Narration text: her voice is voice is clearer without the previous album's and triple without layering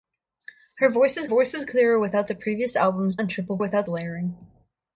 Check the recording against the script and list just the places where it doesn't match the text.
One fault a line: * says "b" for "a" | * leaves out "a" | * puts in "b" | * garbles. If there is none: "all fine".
all fine